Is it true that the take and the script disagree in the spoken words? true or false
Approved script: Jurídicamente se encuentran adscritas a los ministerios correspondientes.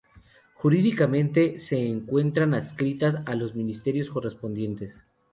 false